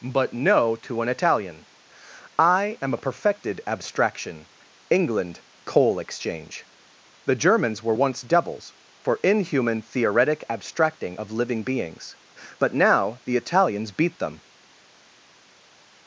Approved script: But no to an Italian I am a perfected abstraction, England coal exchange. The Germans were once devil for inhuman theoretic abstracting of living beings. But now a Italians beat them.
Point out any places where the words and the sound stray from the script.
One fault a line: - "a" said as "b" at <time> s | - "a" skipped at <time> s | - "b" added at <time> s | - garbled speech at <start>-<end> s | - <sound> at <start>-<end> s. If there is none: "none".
- "devil" said as "devils" at 8.2 s
- "a" said as "the" at 13.2 s